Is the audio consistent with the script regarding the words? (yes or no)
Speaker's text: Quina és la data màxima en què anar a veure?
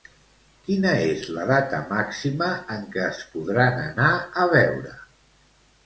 no